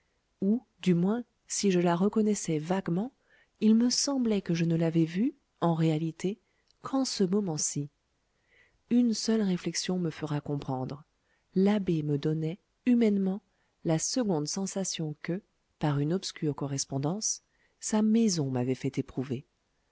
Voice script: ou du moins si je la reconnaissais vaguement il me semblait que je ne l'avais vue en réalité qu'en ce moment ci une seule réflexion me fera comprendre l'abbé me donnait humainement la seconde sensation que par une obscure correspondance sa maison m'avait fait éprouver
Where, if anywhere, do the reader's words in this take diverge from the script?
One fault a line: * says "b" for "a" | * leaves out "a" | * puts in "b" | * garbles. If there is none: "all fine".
all fine